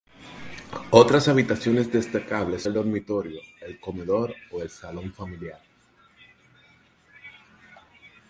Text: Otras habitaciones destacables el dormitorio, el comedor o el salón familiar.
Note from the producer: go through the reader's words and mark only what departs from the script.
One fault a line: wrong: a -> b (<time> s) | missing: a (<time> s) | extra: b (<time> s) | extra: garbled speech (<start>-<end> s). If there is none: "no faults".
no faults